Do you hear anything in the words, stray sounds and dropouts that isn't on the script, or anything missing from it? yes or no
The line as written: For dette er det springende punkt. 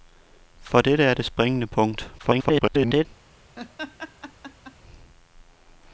yes